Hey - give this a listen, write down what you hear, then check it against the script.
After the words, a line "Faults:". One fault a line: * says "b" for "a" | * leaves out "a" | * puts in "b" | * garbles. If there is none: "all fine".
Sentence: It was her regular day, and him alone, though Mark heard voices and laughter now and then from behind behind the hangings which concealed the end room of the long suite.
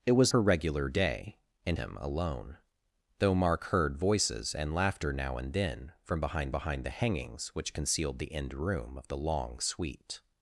It was her regular day, and him alone, though Mark heard voices and laughter now and then from behind behind the hangings which concealed the end room of the long suite.
Faults:
all fine